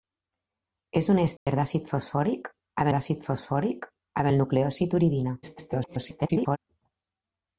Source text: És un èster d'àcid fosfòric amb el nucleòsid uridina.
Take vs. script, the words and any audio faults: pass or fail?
fail